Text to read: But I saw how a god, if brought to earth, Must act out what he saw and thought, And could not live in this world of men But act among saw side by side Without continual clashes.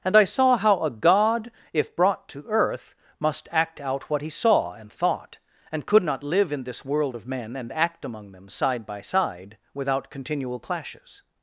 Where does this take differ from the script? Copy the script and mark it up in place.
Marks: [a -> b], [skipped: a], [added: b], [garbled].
[But -> And] I saw how a god, if brought to earth, Must act out what he saw and thought, And could not live in this world of men [But -> And] act among [saw -> them] side by side Without continual clashes.